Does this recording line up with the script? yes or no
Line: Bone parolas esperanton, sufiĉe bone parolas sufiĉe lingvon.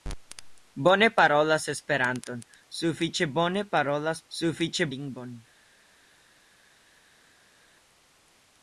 yes